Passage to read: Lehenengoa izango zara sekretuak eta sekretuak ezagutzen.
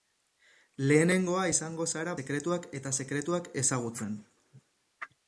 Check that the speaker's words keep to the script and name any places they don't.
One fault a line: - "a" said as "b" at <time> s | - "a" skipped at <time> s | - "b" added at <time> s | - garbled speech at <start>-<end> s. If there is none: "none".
none